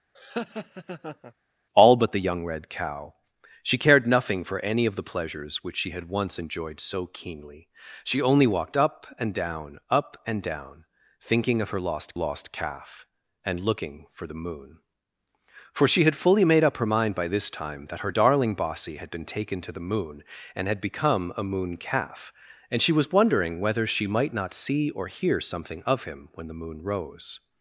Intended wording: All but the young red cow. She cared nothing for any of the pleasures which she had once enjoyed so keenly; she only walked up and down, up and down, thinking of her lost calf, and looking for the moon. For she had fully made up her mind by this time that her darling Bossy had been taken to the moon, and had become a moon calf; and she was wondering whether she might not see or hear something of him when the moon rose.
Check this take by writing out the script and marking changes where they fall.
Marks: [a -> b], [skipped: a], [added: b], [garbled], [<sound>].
[laugh] All but the young red cow. She cared nothing for any of the pleasures which she had once enjoyed so keenly; she only walked up and down, up and down, thinking of her lost [added: lost] calf, and looking for the moon. For she had fully made up her mind by this time that her darling Bossy had been taken to the moon, and had become a moon calf; and she was wondering whether she might not see or hear something of him when the moon rose.